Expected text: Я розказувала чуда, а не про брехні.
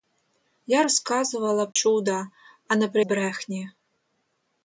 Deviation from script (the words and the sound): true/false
true